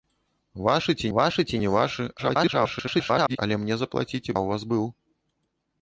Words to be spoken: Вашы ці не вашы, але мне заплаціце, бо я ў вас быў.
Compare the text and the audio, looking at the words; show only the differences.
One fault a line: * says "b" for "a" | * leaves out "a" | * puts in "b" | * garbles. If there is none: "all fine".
* puts in "вашы ці"
* garbles
* leaves out "бо"